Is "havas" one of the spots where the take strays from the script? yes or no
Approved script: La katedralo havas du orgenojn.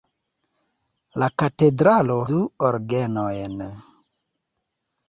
yes